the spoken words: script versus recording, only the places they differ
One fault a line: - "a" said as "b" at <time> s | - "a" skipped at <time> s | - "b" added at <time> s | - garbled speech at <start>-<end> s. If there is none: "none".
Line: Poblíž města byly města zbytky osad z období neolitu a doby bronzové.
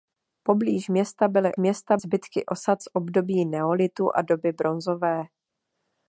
none